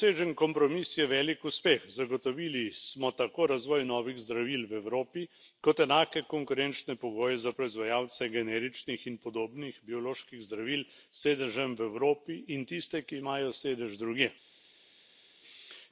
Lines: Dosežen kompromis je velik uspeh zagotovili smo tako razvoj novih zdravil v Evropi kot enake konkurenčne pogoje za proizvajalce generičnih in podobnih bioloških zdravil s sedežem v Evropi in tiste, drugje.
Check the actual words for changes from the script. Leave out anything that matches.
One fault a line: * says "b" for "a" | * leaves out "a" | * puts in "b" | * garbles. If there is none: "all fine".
* puts in "ki imajo sedež"